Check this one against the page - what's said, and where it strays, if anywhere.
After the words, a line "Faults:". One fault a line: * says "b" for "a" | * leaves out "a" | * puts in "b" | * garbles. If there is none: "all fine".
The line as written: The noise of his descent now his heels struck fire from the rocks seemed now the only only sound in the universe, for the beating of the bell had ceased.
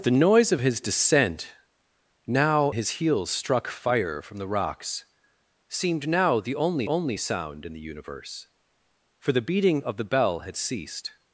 The noise of his descent now his heels struck fire from the rocks seemed now the only only sound in the universe, for the beating of the bell had ceased.
Faults:
all fine